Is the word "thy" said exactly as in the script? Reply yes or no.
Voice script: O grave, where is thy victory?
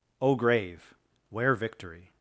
no